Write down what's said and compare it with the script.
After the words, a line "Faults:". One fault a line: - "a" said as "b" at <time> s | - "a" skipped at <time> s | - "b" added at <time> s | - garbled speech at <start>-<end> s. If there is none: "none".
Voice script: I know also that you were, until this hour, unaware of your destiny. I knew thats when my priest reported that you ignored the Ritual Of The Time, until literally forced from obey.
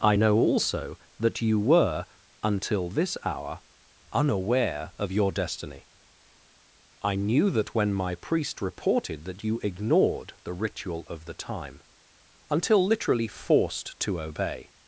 I know also that you were, until this hour, unaware of your destiny. I knew that when my priest reported that you ignored the Ritual Of The Time, until literally forced to obey.
Faults:
- "thats" said as "that" at 7.5 s
- "from" said as "to" at 14.0 s